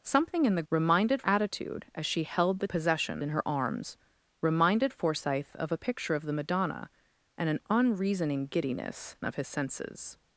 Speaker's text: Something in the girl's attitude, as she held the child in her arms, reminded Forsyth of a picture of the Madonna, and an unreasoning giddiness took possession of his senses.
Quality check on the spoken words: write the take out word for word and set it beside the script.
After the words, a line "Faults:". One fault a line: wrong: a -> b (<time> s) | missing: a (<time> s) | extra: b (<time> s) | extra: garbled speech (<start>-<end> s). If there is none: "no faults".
Something in the reminded attitude, as she held the possession in her arms, reminded Forsyth of a picture of the Madonna, and an unreasoning giddiness of his senses.
Faults:
wrong: girl's -> reminded (0.7 s)
wrong: child -> possession (2.7 s)
missing: took possession (9.2 s)